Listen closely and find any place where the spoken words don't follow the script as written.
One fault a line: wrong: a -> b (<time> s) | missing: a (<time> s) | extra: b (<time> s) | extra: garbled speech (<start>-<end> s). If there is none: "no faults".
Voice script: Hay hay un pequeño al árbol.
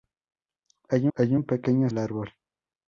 no faults